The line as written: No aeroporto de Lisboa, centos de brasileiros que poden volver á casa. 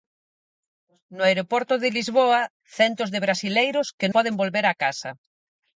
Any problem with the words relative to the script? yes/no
no